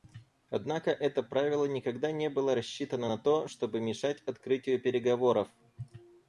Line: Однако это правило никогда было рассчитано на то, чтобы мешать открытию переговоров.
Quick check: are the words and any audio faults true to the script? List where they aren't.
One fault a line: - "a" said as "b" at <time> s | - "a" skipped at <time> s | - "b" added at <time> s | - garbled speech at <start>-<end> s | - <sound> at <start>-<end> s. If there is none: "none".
- "не" added at 2.1 s